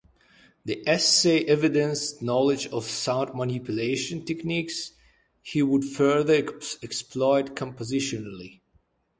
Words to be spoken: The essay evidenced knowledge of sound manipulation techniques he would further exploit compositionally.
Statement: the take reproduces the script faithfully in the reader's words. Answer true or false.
true